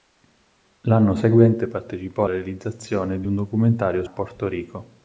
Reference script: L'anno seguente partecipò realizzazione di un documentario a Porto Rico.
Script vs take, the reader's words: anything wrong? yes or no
no